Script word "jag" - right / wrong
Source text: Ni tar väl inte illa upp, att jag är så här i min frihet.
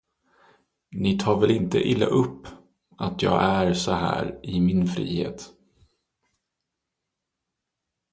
right